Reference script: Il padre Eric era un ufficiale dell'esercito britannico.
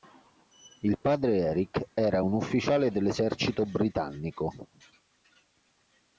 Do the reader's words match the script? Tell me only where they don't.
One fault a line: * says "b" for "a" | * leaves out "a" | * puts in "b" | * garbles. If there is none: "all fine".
all fine